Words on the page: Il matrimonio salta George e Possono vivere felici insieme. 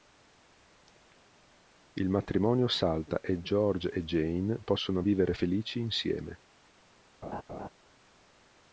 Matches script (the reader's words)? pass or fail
fail